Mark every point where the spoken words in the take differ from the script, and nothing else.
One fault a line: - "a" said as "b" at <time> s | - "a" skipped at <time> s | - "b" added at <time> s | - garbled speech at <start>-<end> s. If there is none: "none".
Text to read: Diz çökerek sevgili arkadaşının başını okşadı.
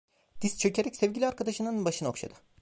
none